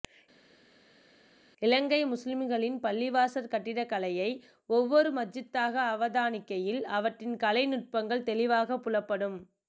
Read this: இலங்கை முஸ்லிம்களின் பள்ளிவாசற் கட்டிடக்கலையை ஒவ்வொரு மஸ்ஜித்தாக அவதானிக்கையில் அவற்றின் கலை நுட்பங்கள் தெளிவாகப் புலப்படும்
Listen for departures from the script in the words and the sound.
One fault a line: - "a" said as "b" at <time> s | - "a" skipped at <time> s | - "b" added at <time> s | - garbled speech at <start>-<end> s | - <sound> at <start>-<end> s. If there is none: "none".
none